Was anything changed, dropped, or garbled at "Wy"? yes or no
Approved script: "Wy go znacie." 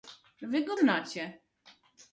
no